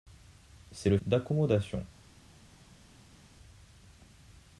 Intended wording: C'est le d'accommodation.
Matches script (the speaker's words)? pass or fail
pass